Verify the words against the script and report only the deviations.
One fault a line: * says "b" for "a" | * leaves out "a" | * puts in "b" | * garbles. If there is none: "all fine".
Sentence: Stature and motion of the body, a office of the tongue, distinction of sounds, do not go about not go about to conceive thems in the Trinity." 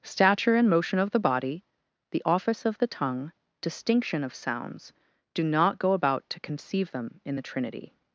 * says "the" for "a"
* leaves out "not go about"
* says "them" for "thems"